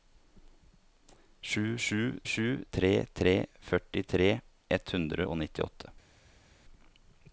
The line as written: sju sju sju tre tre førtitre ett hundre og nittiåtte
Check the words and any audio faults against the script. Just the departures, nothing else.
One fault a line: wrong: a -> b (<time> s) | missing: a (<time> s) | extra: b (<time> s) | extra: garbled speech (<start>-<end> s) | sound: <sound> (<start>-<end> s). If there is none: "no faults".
no faults